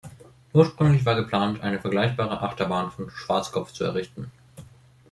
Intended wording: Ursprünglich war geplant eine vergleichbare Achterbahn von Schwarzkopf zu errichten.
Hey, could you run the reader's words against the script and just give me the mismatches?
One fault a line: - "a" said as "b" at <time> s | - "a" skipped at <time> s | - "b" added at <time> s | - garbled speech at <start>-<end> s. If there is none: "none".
none